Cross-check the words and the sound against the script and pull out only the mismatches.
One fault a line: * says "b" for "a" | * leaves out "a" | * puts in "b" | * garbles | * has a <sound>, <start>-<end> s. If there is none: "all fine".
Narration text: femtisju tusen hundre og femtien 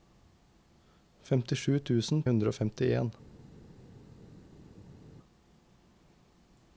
all fine